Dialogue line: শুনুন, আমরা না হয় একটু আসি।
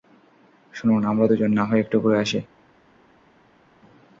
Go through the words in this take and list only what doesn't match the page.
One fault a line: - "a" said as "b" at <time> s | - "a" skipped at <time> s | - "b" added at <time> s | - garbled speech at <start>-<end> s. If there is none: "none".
- "দুজন" added at 1.2 s
- "ঘুরে" added at 2.0 s